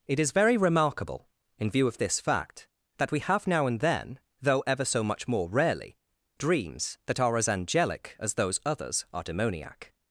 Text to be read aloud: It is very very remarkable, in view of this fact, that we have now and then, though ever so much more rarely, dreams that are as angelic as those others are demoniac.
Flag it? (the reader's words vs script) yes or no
yes